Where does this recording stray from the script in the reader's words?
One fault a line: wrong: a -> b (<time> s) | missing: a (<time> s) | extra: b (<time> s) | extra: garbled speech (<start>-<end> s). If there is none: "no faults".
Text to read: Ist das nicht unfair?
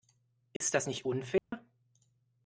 no faults